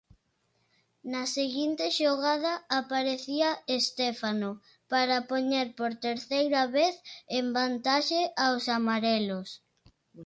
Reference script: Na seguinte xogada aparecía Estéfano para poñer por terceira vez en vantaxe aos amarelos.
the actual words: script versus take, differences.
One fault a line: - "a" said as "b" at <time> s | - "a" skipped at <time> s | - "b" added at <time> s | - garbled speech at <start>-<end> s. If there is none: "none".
none